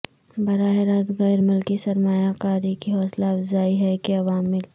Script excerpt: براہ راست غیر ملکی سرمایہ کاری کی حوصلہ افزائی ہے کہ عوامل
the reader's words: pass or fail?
pass